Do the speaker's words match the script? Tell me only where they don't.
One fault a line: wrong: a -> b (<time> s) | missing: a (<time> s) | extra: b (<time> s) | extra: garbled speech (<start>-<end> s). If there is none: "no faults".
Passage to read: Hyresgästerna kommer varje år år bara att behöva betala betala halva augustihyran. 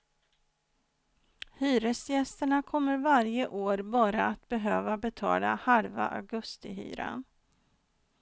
missing: år (3.8 s)
missing: betala (5.5 s)